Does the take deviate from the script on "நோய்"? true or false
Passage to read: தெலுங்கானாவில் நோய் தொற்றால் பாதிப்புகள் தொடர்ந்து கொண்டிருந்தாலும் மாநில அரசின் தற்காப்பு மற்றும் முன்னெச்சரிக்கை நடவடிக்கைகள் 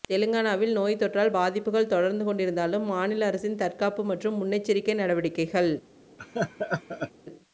false